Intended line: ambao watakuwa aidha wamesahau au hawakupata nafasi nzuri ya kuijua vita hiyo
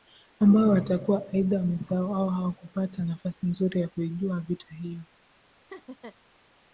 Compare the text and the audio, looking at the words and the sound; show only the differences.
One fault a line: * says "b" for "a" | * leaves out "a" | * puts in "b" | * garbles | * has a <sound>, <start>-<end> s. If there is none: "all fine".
* has a laugh, 5.7-6.2 s